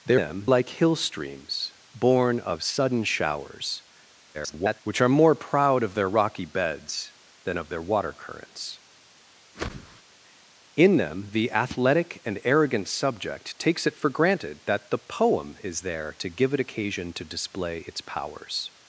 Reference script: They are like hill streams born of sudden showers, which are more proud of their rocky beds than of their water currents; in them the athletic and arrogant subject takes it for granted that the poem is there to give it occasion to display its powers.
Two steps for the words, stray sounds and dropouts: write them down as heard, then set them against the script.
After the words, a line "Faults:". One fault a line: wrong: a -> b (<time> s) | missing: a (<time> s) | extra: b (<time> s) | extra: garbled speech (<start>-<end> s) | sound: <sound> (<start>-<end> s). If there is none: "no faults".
They them like hill streams born of sudden showers, [garbled] which are more proud of their rocky beds than of their water currents; in them the athletic and arrogant subject takes it for granted that the poem is there to give it occasion to display its powers.
Faults:
wrong: are -> them (0.2 s)
extra: garbled speech (4.3-4.8 s)
sound: whoosh (9.5-10.0 s)